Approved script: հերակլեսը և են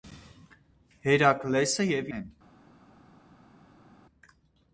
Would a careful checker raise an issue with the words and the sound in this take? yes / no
no